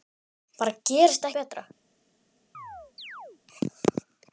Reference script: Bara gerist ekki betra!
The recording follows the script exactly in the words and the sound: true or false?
false